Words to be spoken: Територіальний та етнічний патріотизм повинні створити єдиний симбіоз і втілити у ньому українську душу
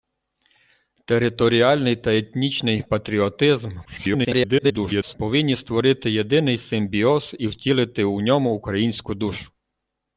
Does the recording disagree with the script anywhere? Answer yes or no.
yes